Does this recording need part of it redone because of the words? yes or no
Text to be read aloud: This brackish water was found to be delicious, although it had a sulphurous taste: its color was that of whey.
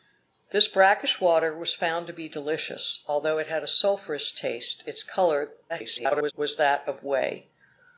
yes